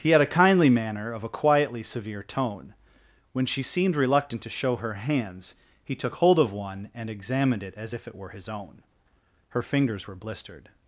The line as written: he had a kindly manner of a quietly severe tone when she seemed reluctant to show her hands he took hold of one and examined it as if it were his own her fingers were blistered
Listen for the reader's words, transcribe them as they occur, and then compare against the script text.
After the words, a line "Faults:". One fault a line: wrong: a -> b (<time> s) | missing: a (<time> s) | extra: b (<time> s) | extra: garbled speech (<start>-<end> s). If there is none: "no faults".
he had a kindly manner of a quietly severe tone when she seemed reluctant to show her hands he took hold of one and examined it as if it were his own her fingers were blistered
Faults:
no faults